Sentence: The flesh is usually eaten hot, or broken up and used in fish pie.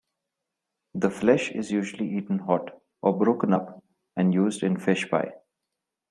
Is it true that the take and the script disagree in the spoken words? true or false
false